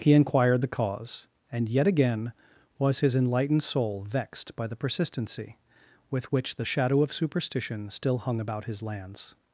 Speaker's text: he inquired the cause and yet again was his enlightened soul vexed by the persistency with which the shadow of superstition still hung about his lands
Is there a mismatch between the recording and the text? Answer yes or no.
no